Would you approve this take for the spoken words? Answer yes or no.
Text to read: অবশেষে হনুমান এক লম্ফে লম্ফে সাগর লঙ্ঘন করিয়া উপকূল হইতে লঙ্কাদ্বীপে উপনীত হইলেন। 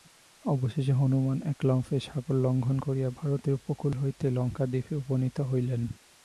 no